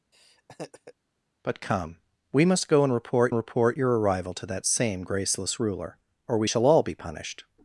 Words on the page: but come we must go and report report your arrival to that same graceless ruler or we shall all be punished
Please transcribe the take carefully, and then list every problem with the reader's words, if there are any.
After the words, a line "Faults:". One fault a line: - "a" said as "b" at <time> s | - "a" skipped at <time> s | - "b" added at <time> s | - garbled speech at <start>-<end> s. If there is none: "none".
but come we must go and report report your arrival to that same graceless ruler or we shall all be punished
Faults:
none